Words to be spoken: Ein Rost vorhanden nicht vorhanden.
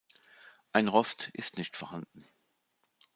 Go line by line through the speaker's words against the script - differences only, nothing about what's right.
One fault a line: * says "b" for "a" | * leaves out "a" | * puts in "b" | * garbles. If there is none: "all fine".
* says "ist" for "vorhanden"